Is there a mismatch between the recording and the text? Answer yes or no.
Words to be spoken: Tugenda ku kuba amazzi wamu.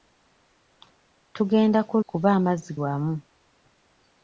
no